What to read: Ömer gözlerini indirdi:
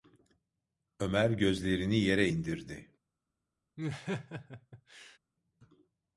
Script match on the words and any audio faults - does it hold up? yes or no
no